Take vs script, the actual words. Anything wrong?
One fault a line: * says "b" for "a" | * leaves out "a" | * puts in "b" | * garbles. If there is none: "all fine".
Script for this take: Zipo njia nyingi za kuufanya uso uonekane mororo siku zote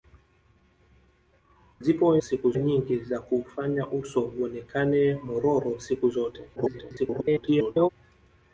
* says "siku" for "njia"
* garbles